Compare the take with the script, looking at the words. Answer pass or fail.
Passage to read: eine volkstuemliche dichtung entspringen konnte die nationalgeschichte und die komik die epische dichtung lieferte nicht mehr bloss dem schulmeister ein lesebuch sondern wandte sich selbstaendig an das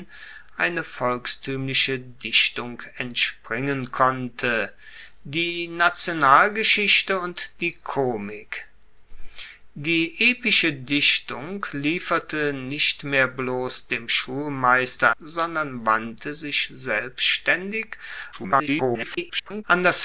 fail